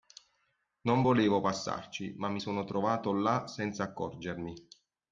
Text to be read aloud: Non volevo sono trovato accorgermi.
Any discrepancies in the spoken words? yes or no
yes